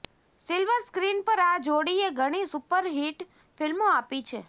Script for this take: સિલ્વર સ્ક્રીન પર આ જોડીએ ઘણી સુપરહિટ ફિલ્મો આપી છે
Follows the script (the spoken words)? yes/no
yes